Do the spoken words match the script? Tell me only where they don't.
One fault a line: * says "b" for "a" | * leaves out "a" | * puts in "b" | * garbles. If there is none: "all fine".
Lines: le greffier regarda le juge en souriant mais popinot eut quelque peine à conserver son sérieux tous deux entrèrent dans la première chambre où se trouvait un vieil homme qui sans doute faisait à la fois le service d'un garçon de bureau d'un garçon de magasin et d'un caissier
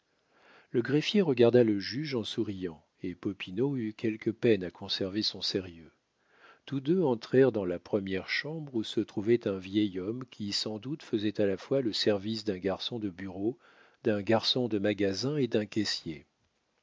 * says "et" for "mais"